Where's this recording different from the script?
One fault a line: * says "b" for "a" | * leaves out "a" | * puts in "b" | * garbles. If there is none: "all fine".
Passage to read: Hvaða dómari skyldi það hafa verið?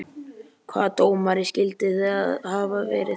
all fine